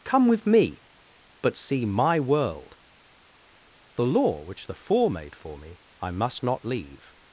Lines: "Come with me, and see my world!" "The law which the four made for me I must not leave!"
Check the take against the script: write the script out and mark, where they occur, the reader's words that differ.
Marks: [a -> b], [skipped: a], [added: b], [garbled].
"Come with me, [and -> but] see my world!" "The law which the four made for me I must not leave!"